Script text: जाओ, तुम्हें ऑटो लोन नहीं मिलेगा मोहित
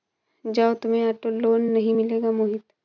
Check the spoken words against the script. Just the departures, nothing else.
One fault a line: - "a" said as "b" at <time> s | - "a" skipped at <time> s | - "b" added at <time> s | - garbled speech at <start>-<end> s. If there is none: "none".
none